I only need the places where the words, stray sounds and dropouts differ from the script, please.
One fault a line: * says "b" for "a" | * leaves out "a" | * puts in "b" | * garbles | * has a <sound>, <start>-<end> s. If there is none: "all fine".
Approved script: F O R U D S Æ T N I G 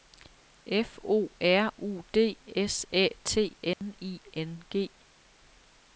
* has a dropout, 3.7-3.8 s
* puts in "N"